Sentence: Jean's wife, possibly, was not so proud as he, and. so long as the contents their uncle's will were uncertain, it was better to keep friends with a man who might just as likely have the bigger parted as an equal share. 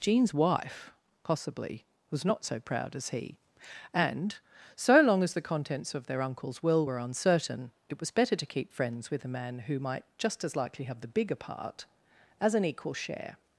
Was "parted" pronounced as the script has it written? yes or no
no